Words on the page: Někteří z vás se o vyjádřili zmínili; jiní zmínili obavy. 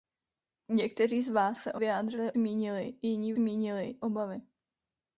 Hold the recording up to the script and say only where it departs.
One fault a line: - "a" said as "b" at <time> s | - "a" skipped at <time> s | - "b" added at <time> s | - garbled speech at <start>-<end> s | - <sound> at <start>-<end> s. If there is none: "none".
none